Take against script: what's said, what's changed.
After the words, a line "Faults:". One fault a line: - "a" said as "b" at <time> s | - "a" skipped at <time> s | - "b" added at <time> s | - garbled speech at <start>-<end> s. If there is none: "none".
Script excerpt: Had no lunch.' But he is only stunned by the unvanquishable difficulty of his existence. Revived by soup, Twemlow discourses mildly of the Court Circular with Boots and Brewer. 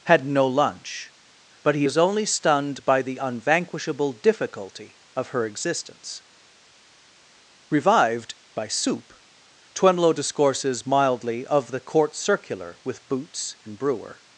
Had no lunch.' But he is only stunned by the unvanquishable difficulty of her existence. Revived by soup, Twemlow discourses mildly of the Court Circular with Boots and Brewer.
Faults:
- "his" said as "her" at 5.3 s